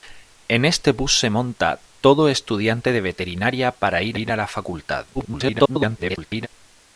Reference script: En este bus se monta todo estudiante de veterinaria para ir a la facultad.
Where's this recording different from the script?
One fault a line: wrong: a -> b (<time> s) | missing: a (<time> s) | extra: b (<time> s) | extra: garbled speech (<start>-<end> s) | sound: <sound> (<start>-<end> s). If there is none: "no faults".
extra: ir (4.1 s)
extra: garbled speech (5.1-6.5 s)